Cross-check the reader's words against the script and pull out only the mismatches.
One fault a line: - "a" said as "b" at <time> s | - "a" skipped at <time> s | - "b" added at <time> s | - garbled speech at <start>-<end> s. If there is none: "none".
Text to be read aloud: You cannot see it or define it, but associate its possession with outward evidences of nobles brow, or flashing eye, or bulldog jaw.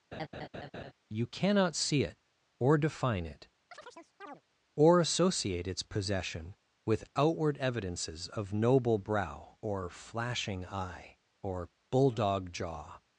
- "but" said as "or" at 4.7 s
- "nobles" said as "noble" at 8.5 s